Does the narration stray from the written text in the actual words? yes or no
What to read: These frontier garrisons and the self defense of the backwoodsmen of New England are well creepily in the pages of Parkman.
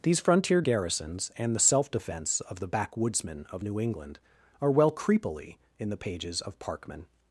no